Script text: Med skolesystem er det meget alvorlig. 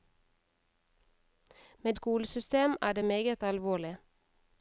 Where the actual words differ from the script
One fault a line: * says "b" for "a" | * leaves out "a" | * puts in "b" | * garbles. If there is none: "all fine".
all fine